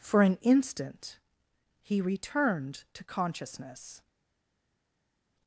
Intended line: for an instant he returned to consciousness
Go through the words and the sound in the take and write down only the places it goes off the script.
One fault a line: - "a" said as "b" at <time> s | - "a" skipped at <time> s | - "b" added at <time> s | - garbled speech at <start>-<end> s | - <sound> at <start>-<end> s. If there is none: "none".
none